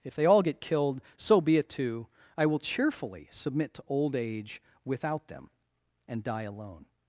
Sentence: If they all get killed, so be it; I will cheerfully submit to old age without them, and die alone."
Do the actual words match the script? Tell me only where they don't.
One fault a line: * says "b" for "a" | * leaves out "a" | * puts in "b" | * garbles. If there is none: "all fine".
* puts in "too"